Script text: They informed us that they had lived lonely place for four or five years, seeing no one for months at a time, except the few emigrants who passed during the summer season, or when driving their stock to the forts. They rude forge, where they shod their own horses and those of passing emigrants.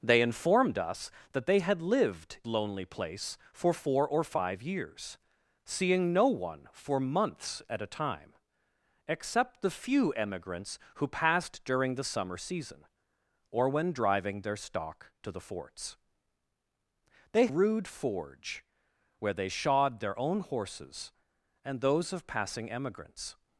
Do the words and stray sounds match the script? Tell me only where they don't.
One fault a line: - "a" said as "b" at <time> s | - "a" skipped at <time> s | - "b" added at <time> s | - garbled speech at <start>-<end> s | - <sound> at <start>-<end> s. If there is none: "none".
none